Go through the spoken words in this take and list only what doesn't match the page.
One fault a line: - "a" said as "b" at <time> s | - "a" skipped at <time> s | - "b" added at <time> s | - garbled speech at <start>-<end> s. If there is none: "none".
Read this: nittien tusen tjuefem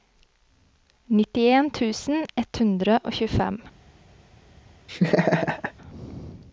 - "ett hundre og" added at 2.4 s